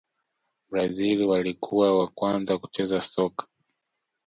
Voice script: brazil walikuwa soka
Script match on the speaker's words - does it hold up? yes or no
no